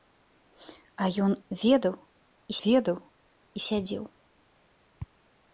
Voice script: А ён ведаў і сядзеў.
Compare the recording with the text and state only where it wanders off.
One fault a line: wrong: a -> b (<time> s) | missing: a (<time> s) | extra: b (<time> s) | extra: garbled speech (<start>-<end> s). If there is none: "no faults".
extra: ведаў і (2.7 s)